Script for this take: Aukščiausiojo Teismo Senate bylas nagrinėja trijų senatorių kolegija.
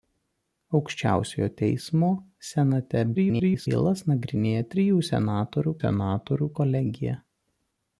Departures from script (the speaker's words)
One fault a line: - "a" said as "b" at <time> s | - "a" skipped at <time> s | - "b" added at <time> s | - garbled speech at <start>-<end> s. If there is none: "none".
- garbled speech at 3.1-3.7 s
- "senatorių" added at 5.8 s